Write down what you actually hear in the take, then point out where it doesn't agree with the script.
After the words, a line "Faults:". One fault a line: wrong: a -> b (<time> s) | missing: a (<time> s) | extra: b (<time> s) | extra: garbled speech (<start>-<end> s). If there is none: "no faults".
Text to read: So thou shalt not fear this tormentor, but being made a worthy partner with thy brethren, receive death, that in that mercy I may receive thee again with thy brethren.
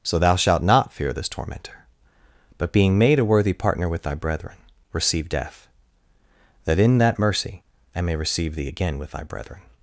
So thou shalt not fear this tormentor, but being made a worthy partner with thy brethren, receive death, that in that mercy I may receive thee again with thy brethren.
Faults:
no faults